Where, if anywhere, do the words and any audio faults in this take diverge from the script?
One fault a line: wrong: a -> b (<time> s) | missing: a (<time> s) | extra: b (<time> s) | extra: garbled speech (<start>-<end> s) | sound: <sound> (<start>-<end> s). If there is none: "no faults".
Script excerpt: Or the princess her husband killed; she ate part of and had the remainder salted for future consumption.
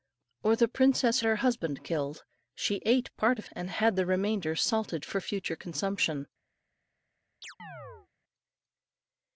sound: chirp (7.4-8.1 s)